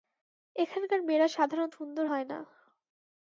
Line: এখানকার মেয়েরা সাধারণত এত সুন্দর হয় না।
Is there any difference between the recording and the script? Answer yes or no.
yes